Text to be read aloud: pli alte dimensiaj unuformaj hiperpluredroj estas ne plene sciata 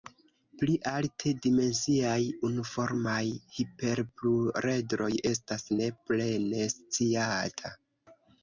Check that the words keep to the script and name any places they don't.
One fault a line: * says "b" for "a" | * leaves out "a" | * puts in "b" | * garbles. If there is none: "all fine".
all fine